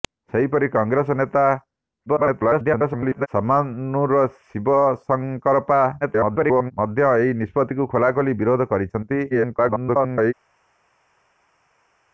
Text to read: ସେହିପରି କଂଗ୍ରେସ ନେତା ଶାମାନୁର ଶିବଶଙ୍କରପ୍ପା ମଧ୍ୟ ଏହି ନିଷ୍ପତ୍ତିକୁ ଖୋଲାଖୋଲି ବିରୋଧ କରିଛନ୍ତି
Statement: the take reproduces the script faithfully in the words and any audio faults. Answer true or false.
false